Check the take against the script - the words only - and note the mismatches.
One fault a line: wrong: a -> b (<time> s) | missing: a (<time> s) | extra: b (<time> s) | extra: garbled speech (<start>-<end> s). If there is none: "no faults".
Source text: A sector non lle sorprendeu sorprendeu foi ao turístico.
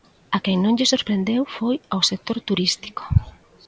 wrong: sector -> quen (0.4 s)
missing: sorprendeu (1.4 s)
extra: sector (2.1 s)